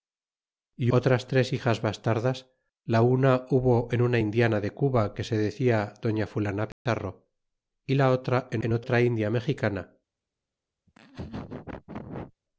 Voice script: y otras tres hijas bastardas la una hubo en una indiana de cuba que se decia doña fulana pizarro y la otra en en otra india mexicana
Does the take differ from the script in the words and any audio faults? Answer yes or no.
yes